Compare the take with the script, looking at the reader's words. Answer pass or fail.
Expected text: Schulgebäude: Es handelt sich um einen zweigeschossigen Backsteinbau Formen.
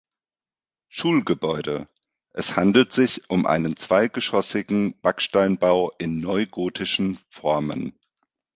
fail